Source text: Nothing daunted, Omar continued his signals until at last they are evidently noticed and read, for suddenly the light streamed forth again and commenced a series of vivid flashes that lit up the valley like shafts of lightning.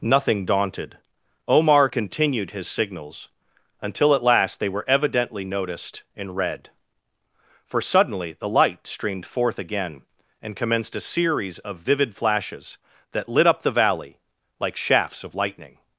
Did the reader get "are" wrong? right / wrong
wrong